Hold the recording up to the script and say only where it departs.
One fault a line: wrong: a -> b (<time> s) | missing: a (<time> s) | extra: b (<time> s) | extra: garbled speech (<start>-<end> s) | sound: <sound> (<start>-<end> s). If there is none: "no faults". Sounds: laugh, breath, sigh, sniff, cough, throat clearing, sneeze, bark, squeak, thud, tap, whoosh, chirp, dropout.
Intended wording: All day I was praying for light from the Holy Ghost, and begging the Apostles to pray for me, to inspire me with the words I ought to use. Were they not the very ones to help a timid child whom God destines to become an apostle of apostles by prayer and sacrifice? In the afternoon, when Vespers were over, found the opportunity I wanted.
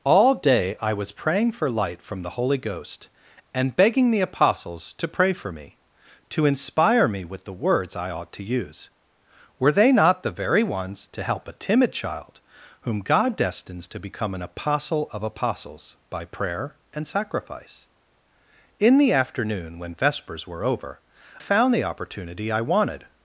no faults